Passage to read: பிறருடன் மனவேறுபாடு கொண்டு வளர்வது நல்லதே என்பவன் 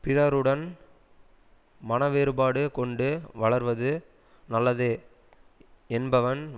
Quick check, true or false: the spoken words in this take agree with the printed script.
true